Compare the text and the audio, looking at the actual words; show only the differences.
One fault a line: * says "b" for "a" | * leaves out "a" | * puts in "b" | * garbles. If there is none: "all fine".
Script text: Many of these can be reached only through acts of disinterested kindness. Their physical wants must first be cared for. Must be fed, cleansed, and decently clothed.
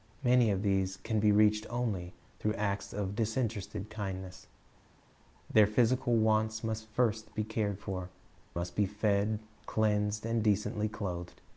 all fine